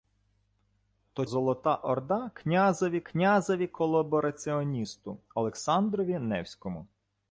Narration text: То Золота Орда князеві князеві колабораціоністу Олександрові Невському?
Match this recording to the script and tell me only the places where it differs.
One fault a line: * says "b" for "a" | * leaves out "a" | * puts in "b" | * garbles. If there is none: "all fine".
all fine